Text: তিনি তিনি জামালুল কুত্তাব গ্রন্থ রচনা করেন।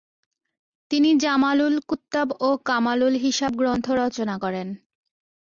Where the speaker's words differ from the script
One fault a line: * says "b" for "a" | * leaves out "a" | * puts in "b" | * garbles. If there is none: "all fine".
* leaves out "তিনি"
* puts in "ও কামালুল হিসাব"